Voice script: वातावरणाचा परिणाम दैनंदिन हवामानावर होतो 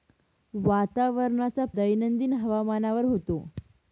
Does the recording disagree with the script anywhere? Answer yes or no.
yes